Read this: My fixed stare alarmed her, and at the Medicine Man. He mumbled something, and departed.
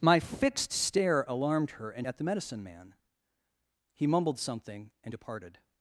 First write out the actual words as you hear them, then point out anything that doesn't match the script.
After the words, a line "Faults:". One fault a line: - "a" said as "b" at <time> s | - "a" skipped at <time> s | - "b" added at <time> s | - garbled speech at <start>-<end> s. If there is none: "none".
My fixed stare alarmed her, and at the Medicine Man. He mumbled something, and departed.
Faults:
none